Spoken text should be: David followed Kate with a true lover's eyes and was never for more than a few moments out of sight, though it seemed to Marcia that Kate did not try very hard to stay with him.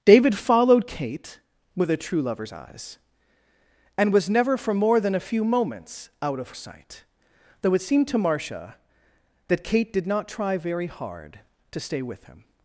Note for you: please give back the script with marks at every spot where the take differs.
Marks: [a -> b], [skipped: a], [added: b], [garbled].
David followed Kate with a true lover's eyes and was never for more than a few moments out of sight, though it seemed to Marcia that Kate did not try very hard to stay with him.